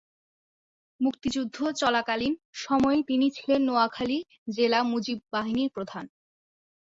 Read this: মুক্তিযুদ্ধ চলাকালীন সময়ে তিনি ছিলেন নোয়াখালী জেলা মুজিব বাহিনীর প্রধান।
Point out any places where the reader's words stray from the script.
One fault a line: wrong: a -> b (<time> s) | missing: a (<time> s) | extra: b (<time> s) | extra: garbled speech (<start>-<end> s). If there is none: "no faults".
no faults